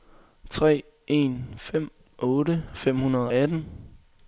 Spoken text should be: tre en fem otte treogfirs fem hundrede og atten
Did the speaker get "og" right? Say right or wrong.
wrong